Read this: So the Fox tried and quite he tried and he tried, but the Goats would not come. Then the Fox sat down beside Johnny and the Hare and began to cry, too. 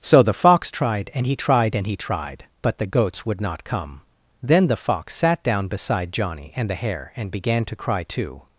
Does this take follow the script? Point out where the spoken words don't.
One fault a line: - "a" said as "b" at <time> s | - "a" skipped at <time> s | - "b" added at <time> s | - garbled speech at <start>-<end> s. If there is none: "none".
- "quite" skipped at 1.3 s